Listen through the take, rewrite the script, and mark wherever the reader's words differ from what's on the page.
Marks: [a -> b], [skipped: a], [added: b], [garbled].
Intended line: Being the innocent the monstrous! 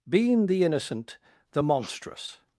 Being the innocent the monstrous!